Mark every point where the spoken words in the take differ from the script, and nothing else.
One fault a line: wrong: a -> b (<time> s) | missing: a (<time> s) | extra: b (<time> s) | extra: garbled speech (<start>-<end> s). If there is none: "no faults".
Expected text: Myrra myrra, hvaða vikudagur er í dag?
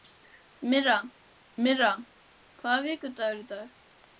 no faults